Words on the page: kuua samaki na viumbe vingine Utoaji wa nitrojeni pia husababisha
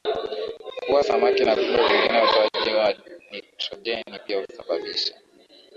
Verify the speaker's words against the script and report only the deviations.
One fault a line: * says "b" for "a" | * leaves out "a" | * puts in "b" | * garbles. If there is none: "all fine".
all fine